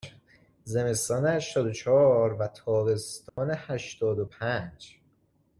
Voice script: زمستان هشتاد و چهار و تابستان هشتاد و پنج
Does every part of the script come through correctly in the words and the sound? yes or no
no